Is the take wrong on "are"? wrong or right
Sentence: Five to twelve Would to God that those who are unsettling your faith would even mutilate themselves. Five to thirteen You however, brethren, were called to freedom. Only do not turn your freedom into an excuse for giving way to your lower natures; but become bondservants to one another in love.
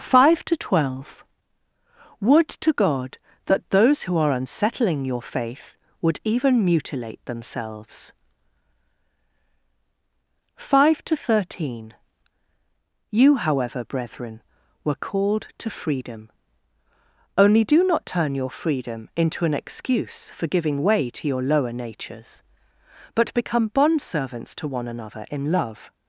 right